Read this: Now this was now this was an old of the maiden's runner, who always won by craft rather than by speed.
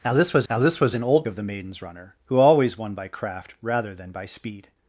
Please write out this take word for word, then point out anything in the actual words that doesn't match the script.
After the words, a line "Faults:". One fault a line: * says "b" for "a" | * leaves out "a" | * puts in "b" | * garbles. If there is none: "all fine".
Now this was now this was an old of the maiden's runner, who always won by craft rather than by speed.
Faults:
all fine